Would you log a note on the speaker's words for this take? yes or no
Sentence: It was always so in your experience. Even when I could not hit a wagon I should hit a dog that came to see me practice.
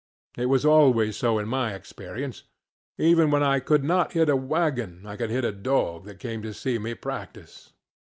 yes